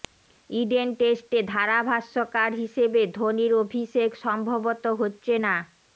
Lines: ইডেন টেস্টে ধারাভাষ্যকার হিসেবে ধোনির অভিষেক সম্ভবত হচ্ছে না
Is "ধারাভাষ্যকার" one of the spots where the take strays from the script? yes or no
no